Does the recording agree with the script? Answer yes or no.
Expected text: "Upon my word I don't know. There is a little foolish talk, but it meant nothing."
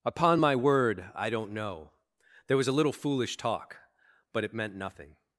no